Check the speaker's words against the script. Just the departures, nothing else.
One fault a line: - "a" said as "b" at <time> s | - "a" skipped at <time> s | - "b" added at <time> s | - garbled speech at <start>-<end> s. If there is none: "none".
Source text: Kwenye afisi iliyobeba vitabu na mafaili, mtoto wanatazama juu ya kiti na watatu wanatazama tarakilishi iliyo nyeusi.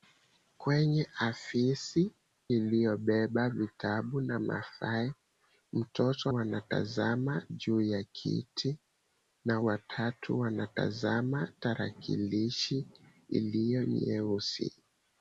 none